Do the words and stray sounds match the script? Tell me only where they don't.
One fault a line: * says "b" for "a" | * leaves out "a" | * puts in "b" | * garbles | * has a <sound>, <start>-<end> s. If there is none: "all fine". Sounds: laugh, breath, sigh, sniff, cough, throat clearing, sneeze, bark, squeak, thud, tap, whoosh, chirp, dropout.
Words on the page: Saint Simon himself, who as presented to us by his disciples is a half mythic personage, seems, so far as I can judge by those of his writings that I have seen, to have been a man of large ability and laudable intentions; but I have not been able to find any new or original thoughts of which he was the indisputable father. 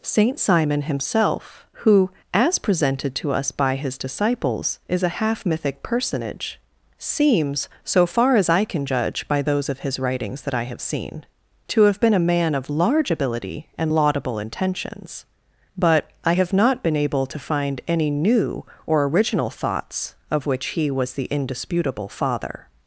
all fine